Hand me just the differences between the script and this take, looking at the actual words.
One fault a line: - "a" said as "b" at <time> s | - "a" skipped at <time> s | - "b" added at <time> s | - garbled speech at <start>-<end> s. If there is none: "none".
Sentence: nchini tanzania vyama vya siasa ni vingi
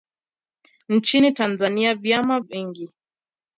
- "vya siasa ni" skipped at 2.4 s